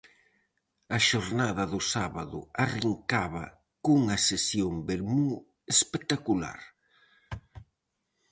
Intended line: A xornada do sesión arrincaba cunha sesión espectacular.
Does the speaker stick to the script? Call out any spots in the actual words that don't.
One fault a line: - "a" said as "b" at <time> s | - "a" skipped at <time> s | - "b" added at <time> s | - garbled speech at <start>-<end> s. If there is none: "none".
- "sesión" said as "sábado" at 1.9 s
- "vermú" added at 4.9 s